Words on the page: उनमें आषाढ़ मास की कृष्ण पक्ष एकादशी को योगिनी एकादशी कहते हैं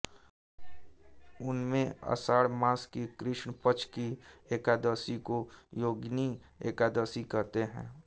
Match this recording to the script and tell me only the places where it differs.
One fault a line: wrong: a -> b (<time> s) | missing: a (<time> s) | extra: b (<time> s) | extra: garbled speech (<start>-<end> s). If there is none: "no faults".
extra: की (3.9 s)